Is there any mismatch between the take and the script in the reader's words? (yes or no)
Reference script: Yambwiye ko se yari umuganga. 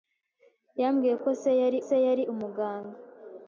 yes